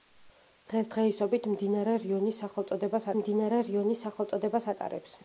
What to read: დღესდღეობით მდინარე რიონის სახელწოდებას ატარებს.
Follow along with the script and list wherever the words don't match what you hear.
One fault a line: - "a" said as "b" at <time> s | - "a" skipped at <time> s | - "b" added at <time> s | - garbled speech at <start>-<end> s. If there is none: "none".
- "მდინარე რიონის სახელწოდებას" added at 3.2 s